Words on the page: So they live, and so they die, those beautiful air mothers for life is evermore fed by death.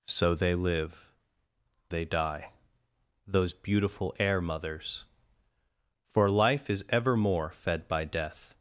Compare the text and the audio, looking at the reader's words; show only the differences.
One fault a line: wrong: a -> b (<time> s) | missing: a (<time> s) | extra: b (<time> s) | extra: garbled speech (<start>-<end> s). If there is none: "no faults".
missing: and so (1.1 s)